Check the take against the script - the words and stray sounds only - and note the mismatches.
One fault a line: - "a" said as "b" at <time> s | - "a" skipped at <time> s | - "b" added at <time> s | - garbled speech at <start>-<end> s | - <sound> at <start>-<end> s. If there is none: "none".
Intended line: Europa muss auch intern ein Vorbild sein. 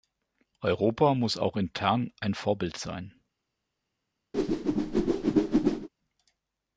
- whoosh at 4.3-5.9 s